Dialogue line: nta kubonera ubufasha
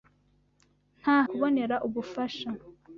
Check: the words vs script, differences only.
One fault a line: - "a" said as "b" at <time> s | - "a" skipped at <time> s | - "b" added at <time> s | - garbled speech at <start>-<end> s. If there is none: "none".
none